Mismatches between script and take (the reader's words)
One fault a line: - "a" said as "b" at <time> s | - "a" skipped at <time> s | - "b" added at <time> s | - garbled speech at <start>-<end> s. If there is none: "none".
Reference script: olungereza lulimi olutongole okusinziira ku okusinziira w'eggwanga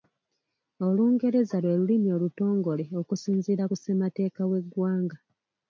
- "lwe" added at 1.6 s
- "okusinziira" said as "ssemateeka" at 3.8 s